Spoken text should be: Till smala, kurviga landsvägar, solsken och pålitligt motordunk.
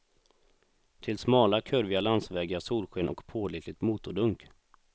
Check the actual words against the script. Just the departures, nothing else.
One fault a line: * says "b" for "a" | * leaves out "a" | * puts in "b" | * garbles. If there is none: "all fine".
all fine